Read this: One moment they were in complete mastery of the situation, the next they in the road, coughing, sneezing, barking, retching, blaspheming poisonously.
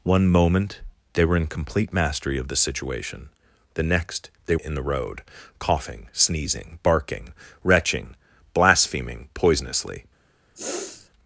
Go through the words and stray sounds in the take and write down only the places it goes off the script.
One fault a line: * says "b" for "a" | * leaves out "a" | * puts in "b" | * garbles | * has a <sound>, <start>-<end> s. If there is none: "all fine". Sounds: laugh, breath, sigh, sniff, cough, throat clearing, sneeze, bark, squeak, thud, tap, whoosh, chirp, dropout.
* has a sniff, 10.5-11.1 s